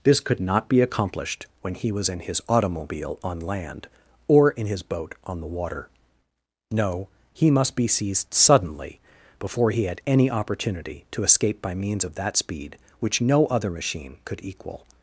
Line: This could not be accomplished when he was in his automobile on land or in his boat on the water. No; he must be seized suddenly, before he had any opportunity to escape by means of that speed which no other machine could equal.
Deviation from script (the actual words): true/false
false